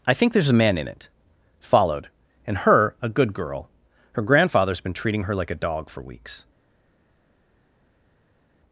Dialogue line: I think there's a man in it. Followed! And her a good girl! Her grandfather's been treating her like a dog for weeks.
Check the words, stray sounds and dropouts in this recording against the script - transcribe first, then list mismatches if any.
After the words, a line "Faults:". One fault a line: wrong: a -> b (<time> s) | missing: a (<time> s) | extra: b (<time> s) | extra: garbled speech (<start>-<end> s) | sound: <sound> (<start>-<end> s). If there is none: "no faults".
I think there's a man in it. Followed! And her a good girl! Her grandfather's been treating her like a dog for weeks.
Faults:
no faults